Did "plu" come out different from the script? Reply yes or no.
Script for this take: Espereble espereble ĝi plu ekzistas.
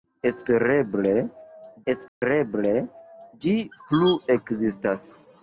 no